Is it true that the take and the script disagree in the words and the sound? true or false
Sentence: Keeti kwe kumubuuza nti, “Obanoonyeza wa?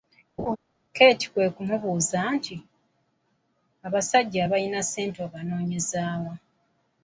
true